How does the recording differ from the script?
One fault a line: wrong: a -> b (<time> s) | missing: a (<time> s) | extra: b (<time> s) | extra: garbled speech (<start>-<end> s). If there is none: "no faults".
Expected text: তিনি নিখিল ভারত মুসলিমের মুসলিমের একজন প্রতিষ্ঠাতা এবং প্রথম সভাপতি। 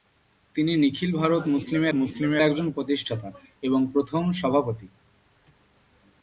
no faults